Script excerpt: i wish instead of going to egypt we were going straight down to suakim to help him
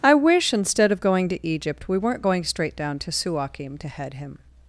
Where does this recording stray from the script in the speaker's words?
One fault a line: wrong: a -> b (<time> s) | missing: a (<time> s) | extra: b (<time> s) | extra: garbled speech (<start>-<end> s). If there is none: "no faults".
wrong: were -> weren't (2.0 s)
wrong: help -> head (3.9 s)